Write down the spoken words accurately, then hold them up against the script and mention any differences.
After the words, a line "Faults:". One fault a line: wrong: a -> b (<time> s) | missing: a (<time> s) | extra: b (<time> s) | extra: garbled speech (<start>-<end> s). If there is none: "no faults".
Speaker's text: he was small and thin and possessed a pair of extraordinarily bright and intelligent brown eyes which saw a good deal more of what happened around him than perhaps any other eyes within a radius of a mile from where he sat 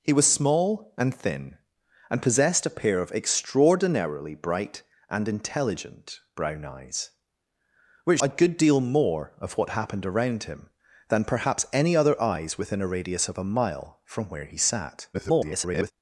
he was small and thin and possessed a pair of extraordinarily bright and intelligent brown eyes which a good deal more of what happened around him than perhaps any other eyes within a radius of a mile from where he sat [garbled]
Faults:
missing: saw (8.2 s)
extra: garbled speech (15.1-15.9 s)